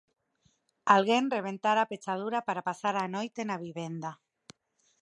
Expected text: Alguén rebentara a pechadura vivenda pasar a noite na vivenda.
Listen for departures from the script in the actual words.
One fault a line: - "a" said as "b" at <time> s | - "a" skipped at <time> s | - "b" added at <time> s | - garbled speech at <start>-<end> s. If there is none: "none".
- "vivenda" said as "para" at 2.5 s